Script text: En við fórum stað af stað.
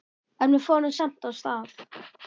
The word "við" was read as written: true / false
true